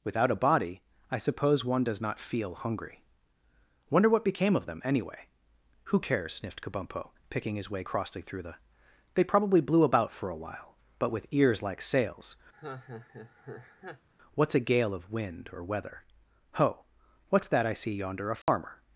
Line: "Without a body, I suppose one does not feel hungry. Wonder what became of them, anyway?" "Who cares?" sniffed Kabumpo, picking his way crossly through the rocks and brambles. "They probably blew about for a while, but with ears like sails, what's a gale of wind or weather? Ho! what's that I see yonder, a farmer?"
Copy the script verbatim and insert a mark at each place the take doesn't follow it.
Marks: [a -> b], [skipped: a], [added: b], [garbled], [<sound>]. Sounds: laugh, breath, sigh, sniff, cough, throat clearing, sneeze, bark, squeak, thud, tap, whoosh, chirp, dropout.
"Without a body, I suppose one does not feel hungry. Wonder what became of them, anyway?" "Who cares?" sniffed Kabumpo, picking his way crossly through the [skipped: rocks and brambles.] "They probably blew about for a while, but with ears like sails, [laugh] what's a gale of wind or weather? Ho! what's that I see yonder, a farmer?" [dropout]